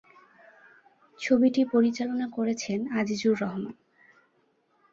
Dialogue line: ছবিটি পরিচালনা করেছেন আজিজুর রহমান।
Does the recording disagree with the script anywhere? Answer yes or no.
no